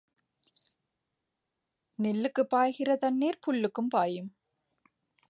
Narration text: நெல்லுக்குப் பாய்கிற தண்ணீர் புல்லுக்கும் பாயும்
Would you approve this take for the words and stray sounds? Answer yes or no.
yes